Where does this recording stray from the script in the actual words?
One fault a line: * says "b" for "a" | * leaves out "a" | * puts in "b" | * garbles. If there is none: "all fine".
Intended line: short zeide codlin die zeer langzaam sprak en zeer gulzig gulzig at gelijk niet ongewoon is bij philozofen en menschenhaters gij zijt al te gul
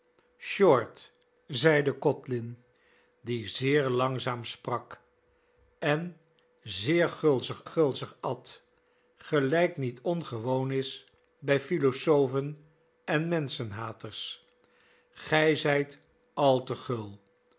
all fine